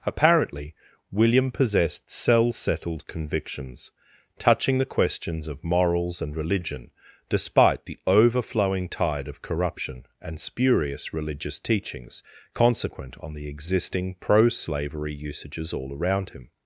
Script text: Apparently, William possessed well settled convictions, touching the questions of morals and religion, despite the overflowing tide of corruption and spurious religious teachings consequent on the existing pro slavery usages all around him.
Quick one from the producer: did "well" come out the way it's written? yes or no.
no